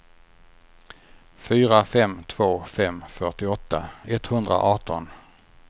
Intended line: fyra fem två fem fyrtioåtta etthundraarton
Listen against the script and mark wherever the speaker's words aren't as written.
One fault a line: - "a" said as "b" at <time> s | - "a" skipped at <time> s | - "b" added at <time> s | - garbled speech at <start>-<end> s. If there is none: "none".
none